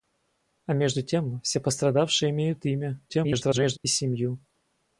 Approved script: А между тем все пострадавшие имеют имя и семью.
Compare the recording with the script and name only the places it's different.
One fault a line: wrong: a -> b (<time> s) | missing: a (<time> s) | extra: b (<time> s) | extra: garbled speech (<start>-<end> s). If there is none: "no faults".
extra: garbled speech (3.1-3.8 s)